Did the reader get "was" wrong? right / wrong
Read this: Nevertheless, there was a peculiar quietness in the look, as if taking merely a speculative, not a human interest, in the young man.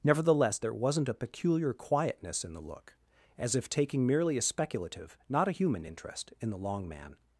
wrong